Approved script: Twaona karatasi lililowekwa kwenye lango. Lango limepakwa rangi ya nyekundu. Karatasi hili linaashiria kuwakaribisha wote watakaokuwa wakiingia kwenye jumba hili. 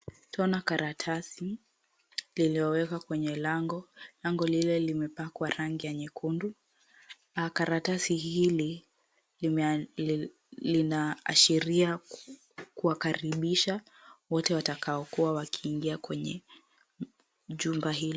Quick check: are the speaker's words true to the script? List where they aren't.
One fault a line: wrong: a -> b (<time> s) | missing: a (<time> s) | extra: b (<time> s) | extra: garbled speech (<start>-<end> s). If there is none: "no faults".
extra: lile (4.5 s)